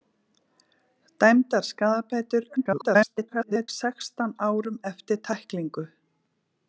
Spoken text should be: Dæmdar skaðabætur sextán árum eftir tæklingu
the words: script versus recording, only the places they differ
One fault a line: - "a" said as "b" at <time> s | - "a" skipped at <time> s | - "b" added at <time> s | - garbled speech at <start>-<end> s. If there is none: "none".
- garbled speech at 2.6-3.7 s